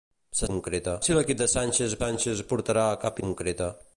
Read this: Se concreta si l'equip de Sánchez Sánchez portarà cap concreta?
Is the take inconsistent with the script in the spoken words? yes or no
no